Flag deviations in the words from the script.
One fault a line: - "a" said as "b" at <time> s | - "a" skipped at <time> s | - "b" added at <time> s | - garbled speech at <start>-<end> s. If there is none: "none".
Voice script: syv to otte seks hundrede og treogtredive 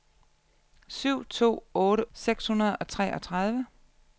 none